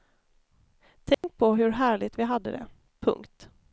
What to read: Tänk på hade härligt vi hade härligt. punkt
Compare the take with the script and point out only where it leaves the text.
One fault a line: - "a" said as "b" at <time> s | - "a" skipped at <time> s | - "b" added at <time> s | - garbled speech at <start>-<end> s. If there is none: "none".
- "hade" said as "hur" at 1.5 s
- "härligt" said as "det" at 2.5 s